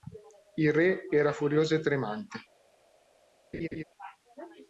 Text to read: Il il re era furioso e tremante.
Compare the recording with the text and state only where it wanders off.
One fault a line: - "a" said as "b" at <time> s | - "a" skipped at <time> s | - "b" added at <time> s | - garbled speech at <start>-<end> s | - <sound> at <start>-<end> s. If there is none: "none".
- "il" skipped at 0.7 s
- laugh at 3.5-3.8 s